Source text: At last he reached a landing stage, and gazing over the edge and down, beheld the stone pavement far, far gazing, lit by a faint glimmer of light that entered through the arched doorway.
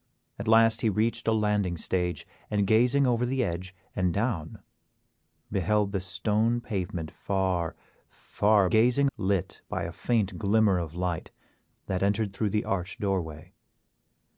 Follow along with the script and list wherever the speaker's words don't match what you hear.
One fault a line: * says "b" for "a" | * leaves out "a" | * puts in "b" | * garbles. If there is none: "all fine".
all fine